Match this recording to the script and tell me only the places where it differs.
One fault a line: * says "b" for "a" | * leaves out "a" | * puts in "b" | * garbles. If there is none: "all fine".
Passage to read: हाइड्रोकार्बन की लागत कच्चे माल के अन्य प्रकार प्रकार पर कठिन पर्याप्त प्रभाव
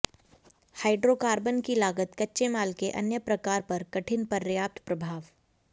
* leaves out "प्रकार"